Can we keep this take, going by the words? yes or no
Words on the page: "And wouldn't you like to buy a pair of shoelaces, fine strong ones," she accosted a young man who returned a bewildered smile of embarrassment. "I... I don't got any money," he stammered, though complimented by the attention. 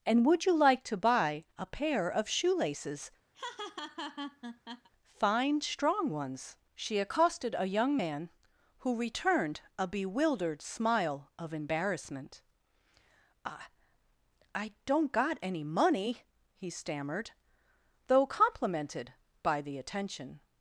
no